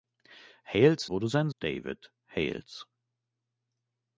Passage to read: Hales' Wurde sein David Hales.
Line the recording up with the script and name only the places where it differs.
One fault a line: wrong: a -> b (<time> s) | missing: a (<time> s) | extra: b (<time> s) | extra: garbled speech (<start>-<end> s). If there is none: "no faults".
no faults